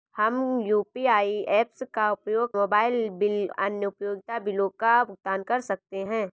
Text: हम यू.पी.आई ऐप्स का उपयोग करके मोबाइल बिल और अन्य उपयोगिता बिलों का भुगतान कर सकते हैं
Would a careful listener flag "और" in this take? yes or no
yes